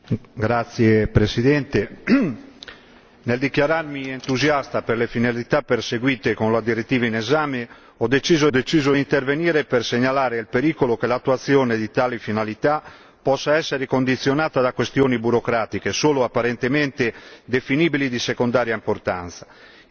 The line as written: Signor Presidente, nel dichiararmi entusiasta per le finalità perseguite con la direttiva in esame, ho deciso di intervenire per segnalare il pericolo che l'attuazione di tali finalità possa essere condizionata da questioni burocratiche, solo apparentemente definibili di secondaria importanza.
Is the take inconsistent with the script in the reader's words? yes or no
yes